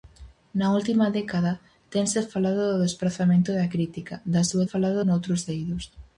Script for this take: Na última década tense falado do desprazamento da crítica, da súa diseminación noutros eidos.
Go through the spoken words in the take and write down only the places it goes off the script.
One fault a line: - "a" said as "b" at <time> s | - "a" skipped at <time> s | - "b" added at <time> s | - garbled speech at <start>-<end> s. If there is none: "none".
- "diseminación" said as "falado" at 4.7 s